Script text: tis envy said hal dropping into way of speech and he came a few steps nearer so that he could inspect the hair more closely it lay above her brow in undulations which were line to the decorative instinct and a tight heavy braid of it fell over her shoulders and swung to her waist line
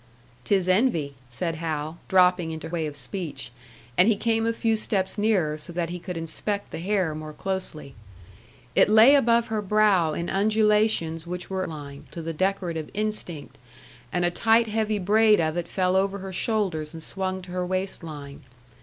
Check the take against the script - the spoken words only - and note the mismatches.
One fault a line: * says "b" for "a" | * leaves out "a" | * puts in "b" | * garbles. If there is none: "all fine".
all fine